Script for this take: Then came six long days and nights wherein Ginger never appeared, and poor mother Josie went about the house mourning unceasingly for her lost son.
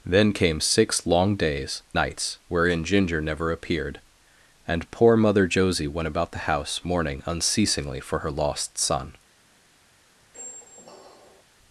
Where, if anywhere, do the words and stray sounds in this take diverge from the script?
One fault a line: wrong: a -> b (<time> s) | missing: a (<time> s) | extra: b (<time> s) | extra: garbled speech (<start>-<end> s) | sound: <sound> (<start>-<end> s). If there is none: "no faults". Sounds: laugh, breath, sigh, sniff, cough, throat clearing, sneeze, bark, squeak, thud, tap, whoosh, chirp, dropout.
missing: and (1.8 s)
sound: squeak (10.3-11.4 s)